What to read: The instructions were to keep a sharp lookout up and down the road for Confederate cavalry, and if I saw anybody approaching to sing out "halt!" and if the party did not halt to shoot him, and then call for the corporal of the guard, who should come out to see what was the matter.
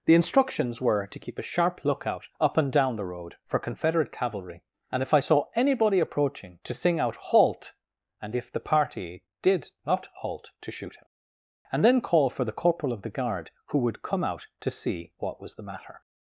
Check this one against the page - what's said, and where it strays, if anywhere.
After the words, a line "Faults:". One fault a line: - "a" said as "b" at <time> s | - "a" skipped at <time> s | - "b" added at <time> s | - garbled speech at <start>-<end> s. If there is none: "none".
The instructions were to keep a sharp lookout up and down the road for Confederate cavalry, and if I saw anybody approaching to sing out "halt!" and if the party did not halt to shoot him, and then call for the corporal of the guard, who would come out to see what was the matter.
Faults:
- "should" said as "would" at 13.8 s